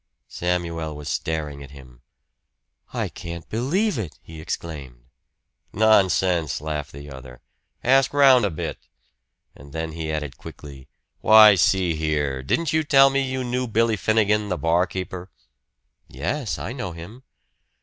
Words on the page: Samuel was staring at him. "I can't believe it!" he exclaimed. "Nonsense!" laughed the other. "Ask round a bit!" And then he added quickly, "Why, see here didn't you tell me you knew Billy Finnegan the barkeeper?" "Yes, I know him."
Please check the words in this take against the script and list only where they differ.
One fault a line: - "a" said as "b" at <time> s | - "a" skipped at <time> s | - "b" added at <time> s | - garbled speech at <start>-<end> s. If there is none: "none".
none